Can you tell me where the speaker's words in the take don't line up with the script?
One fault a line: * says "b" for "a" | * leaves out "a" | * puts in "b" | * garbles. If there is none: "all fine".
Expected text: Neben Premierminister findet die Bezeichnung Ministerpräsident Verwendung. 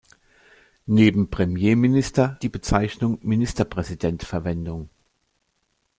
* leaves out "findet"